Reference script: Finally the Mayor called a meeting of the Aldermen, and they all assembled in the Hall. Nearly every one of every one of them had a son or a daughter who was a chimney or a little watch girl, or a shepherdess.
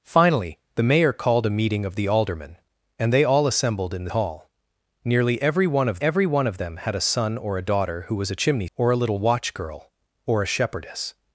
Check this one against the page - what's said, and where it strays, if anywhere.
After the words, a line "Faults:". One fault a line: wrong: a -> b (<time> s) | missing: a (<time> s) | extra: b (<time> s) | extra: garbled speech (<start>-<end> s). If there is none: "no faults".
Finally the Mayor called a meeting of the Aldermen, and they all assembled in the Hall. Nearly every one of every one of them had a son or a daughter who was a chimney or a little watch girl, or a shepherdess.
Faults:
no faults